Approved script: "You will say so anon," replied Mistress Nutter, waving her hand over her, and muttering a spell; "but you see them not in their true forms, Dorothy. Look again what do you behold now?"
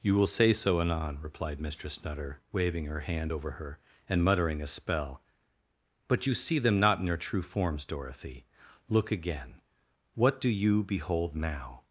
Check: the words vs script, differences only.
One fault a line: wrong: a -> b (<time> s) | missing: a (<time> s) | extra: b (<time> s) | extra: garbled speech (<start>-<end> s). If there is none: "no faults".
no faults